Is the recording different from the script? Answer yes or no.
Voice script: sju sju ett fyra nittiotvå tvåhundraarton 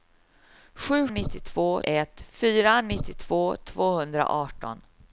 yes